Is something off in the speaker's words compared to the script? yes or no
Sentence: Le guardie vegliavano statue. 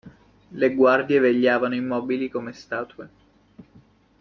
yes